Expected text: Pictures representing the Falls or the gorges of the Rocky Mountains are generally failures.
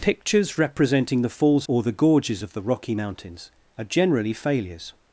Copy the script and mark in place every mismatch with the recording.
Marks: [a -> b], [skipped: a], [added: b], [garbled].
Pictures representing the Falls or the gorges of the Rocky Mountains are generally failures.